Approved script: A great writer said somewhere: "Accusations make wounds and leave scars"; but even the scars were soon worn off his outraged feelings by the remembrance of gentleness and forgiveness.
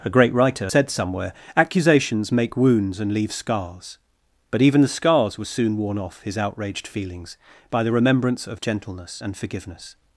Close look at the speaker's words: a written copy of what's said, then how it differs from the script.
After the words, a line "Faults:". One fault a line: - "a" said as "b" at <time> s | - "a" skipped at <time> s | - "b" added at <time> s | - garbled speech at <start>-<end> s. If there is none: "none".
A great writer said somewhere: "Accusations make wounds and leave scars"; but even the scars were soon worn off his outraged feelings by the remembrance of gentleness and forgiveness.
Faults:
none